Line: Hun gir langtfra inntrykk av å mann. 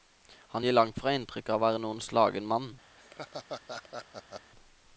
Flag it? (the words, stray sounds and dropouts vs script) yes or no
yes